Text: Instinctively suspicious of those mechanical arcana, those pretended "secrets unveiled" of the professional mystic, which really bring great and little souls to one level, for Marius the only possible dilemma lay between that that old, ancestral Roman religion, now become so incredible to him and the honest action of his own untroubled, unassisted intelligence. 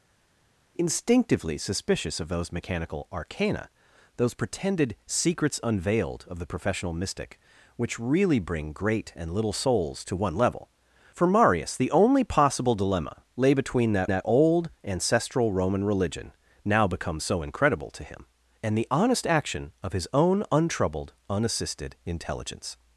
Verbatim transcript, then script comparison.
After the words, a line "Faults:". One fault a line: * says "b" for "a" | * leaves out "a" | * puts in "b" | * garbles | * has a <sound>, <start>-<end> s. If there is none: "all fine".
Instinctively suspicious of those mechanical arcana, those pretended "secrets unveiled" of the professional mystic, which really bring great and little souls to one level, for Marius the only possible dilemma lay between that that old, ancestral Roman religion, now become so incredible to him and the honest action of his own untroubled, unassisted intelligence.
Faults:
all fine